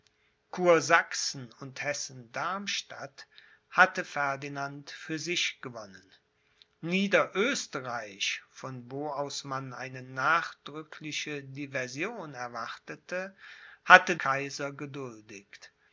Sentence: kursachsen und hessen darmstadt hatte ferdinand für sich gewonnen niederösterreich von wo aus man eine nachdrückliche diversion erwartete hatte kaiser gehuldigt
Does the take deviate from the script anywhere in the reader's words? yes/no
no